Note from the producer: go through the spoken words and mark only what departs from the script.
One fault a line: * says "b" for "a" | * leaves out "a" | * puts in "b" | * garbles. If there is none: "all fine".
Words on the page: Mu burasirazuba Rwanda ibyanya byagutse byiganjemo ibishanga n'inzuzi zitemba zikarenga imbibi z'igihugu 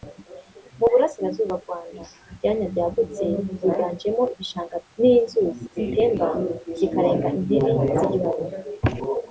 all fine